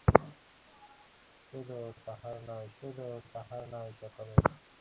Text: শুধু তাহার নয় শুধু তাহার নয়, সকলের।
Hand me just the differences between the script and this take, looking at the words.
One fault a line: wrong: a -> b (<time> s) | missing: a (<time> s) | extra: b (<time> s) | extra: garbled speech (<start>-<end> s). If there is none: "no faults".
no faults